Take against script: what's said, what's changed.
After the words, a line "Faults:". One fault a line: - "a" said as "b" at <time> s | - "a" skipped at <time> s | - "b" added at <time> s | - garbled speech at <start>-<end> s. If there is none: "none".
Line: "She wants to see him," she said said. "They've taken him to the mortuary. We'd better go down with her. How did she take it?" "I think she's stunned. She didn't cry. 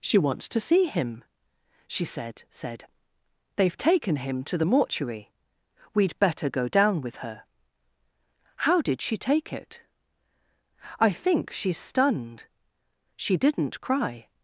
"She wants to see him," she said said. "They've taken him to the mortuary. We'd better go down with her. How did she take it?" "I think she's stunned. She didn't cry.
Faults:
none